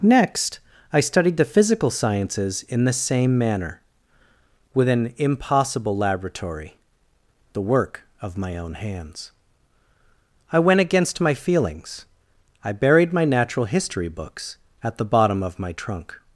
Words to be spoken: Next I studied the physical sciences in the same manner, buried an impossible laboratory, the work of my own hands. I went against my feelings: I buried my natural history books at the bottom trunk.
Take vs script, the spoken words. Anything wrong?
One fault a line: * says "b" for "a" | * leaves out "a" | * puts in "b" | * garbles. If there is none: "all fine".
* says "with" for "buried"
* puts in "of my"